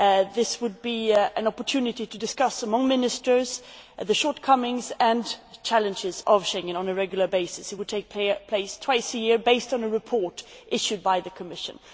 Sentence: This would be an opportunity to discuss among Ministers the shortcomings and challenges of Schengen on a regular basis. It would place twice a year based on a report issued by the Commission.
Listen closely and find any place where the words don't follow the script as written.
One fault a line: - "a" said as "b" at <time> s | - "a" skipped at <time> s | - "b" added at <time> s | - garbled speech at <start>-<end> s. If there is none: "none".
- "take" added at 7.9 s